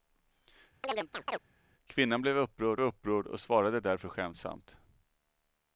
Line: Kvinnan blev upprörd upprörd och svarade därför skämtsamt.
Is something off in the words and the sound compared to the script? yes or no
yes